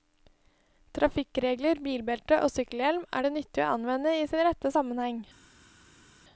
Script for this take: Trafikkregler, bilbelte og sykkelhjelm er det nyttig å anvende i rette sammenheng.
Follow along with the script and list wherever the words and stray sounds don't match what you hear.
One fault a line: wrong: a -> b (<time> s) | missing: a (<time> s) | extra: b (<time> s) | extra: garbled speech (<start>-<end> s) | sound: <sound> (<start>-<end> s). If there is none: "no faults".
extra: sin (4.3 s)